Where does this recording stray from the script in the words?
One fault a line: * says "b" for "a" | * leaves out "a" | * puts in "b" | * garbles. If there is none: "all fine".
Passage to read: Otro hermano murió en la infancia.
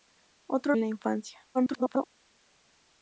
* leaves out "hermano murió"
* garbles